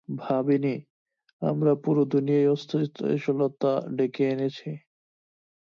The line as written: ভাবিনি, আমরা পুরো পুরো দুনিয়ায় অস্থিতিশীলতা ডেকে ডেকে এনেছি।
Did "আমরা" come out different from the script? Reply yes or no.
no